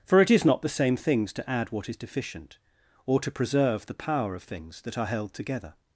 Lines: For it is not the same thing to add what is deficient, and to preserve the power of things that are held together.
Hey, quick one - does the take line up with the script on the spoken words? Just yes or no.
no